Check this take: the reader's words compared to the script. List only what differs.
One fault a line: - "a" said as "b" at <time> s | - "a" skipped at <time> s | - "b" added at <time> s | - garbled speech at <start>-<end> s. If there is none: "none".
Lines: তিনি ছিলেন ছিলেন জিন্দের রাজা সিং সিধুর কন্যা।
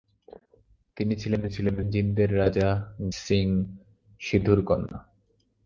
none